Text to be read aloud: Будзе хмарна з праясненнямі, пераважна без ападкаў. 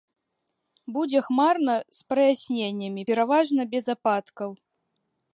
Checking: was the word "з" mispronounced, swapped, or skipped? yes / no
no